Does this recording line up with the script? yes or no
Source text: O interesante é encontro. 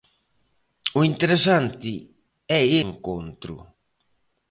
yes